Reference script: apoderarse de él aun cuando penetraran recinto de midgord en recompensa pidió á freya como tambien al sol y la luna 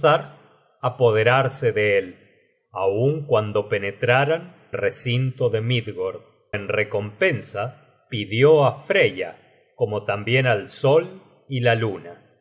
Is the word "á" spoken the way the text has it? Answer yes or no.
yes